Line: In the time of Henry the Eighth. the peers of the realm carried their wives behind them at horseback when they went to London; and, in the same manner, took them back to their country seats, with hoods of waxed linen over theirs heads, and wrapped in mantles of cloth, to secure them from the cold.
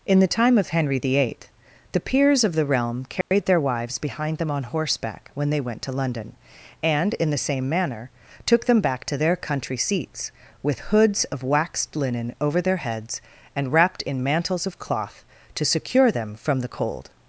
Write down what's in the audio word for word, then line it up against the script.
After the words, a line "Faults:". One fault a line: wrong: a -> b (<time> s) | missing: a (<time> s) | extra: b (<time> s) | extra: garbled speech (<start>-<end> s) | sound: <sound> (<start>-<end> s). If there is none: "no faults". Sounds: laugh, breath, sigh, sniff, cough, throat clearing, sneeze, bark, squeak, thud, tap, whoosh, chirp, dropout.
In the time of Henry the Eighth. the peers of the realm carried their wives behind them on horseback when they went to London; and, in the same manner, took them back to their country seats, with hoods of waxed linen over their heads, and wrapped in mantles of cloth, to secure them from the cold.
Faults:
sound: dropout (3.2-3.3 s)
wrong: at -> on (4.5 s)
wrong: theirs -> their (12.6 s)